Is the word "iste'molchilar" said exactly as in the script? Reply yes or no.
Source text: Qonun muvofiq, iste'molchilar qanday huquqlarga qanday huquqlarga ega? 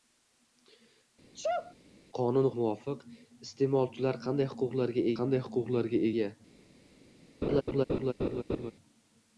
yes